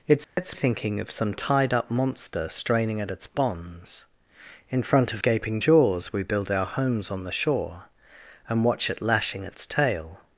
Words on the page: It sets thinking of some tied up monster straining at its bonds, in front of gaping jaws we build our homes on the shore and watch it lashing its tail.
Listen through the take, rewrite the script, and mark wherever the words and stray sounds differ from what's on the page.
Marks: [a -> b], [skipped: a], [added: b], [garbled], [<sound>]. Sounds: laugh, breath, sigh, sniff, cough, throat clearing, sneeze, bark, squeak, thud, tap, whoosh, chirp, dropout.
It sets [dropout] thinking of some tied up monster straining at its bonds, in front of gaping jaws we build our homes on the shore and watch it lashing its tail.